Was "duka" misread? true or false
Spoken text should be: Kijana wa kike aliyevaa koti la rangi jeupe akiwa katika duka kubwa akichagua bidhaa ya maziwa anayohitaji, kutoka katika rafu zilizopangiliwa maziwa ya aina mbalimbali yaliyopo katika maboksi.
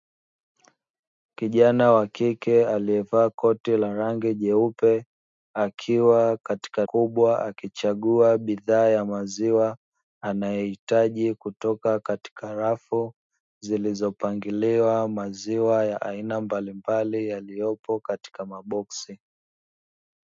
true